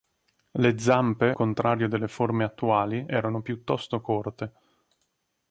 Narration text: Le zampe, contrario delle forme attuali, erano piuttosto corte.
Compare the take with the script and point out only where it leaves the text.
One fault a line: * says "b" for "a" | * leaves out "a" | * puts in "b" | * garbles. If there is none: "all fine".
all fine